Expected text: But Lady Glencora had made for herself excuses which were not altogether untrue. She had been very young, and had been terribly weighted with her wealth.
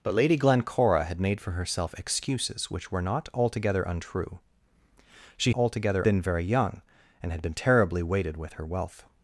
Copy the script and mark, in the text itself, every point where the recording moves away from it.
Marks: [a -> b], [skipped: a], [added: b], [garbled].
But Lady Glencora had made for herself excuses which were not altogether untrue. She [had -> altogether] been very young, and had been terribly weighted with her wealth.